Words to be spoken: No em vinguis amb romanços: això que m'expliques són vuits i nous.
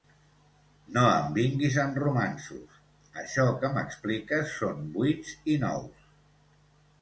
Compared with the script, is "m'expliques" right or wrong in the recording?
right